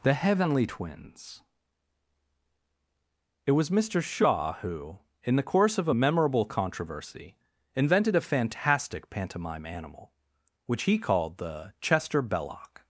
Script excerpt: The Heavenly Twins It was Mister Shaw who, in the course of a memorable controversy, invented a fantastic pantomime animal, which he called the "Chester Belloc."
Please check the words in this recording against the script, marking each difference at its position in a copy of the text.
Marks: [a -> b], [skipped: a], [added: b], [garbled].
The Heavenly Twins It was Mister Shaw who, in the course of a memorable controversy, invented a fantastic pantomime animal, which he called the "Chester Belloc."